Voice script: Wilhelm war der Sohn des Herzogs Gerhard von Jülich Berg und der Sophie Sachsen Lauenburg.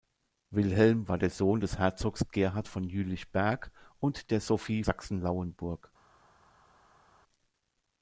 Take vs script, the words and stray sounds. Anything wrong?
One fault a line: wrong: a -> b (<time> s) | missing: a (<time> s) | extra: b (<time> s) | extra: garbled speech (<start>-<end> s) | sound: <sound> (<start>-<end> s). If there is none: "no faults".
no faults